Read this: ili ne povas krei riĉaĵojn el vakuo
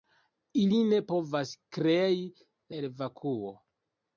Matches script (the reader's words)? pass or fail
fail